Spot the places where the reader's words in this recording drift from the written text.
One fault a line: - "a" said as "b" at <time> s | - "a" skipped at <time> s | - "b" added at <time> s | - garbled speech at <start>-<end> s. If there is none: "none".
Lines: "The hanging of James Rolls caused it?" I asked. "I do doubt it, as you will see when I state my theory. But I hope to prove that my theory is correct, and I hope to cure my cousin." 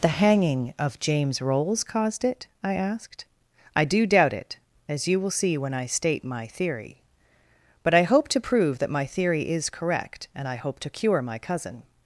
none